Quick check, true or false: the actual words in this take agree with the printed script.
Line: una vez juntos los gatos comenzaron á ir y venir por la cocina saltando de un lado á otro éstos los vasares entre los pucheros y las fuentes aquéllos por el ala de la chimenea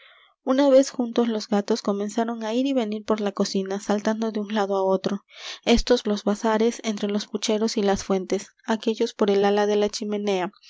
true